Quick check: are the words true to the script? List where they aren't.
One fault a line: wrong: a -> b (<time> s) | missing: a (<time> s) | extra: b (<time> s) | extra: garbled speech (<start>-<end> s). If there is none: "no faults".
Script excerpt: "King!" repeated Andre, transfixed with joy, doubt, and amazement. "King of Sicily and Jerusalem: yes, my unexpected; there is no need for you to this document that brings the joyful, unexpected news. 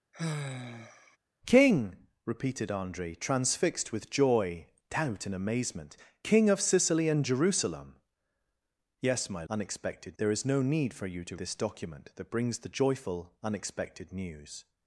no faults